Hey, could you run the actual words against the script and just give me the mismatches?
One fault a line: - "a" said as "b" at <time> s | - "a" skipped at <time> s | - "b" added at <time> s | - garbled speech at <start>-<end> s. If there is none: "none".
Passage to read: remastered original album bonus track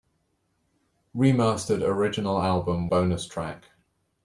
none